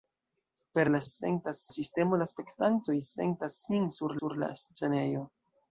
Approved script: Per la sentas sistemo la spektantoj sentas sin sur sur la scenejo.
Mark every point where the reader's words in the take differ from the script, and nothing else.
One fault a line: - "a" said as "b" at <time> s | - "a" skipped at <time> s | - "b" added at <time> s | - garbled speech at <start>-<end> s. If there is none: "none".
none